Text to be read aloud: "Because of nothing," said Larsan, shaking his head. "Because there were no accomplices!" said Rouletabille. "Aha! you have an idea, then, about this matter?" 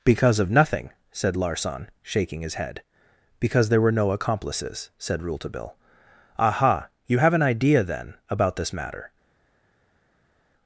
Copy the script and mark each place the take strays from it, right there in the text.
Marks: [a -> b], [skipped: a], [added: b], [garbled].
"Because of nothing," said Larsan, shaking his head. "Because there were no accomplices!" said Rouletabille. "Aha! you have an idea, then, about this matter?"